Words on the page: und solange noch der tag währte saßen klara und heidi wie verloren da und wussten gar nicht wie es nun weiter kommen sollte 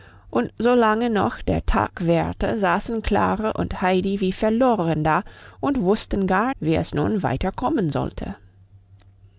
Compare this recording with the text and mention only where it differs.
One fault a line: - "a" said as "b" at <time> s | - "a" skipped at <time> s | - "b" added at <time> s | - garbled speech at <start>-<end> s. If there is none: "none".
- "nicht" skipped at 6.5 s